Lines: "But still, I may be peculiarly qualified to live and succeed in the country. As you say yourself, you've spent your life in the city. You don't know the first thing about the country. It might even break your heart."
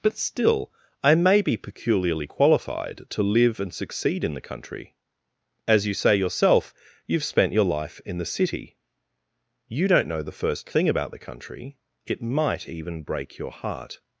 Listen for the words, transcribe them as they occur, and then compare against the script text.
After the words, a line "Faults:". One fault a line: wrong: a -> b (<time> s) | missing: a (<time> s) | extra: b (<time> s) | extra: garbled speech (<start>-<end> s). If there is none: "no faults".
"But still, I may be peculiarly qualified to live and succeed in the country. As you say yourself, you've spent your life in the city. You don't know the first thing about the country. It might even break your heart."
Faults:
no faults